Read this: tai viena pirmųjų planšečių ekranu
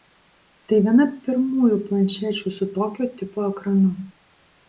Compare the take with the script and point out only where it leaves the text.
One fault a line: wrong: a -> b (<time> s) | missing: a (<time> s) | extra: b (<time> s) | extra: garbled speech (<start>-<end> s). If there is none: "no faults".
extra: su tokio tipo (2.6 s)